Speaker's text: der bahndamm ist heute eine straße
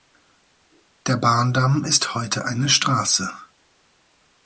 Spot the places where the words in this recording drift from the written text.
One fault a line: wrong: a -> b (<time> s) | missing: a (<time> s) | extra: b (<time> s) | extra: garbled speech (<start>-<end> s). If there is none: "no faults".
no faults